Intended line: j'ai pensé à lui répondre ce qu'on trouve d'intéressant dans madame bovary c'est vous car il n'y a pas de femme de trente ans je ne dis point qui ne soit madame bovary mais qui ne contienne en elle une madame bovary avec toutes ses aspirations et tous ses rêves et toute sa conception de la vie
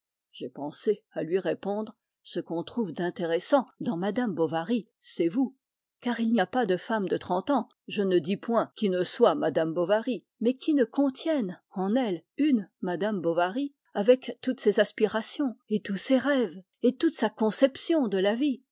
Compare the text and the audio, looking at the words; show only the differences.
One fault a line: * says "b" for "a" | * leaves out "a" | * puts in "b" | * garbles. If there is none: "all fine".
all fine